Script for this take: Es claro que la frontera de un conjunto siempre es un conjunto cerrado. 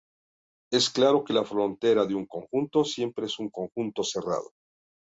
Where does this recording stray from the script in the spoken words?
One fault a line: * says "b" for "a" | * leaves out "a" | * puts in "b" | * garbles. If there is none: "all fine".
all fine